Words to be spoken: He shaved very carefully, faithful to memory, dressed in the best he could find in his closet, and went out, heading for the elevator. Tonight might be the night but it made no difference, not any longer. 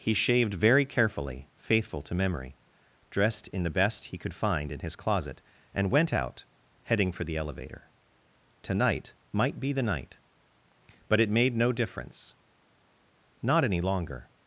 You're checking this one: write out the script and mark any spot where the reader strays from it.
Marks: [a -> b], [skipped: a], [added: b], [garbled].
He shaved very carefully, faithful to memory, dressed in the best he could find in his closet, and went out, heading for the elevator. Tonight might be the night but it made no difference, not any longer.